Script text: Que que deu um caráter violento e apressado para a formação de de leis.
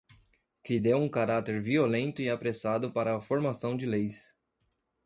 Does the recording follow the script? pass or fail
fail